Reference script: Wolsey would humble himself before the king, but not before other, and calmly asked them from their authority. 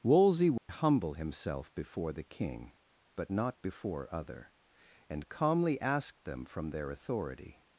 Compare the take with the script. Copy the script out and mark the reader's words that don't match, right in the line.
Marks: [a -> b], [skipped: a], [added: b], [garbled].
Wolsey would humble himself before the king, but not before other, and calmly asked them from their authority.